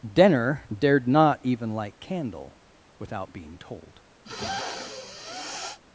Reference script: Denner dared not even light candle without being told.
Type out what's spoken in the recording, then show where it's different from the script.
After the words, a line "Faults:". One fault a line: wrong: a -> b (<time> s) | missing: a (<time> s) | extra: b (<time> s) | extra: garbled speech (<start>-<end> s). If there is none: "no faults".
Denner dared not even light candle without being told.
Faults:
no faults